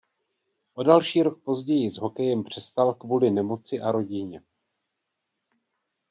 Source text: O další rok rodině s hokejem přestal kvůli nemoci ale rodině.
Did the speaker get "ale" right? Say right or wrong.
wrong